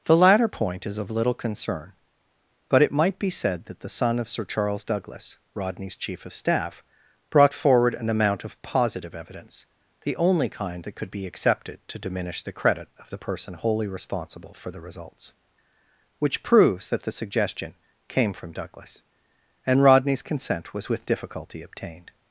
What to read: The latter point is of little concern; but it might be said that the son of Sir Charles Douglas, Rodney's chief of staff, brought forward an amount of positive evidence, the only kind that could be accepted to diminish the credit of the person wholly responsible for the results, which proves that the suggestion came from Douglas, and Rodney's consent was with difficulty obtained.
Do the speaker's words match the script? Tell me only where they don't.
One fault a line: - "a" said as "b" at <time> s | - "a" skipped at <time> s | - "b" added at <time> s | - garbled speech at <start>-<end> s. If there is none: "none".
none